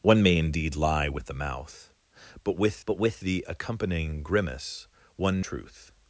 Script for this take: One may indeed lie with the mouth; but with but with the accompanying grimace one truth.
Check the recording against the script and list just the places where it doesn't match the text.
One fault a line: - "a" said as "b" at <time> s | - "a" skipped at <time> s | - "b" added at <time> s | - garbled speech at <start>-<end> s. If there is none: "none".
none